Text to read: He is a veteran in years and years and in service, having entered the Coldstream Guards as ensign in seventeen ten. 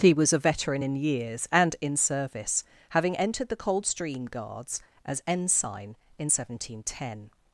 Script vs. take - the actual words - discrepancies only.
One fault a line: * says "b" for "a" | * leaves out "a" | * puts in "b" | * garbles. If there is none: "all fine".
* says "was" for "is"
* leaves out "years and"